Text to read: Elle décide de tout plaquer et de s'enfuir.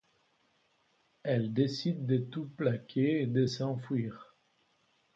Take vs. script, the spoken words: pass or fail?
pass